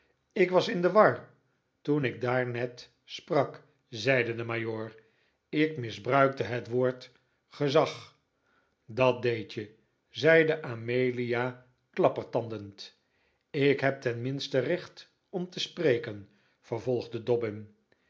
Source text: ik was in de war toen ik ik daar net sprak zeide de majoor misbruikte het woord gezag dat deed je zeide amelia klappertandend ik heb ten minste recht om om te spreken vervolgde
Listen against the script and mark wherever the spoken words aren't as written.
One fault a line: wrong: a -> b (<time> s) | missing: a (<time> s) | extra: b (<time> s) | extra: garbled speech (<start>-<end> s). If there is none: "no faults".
missing: ik (2.2 s)
extra: ik (5.5 s)
missing: om (15.5 s)